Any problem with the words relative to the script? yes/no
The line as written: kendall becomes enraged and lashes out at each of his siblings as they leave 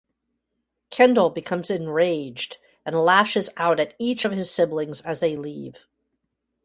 no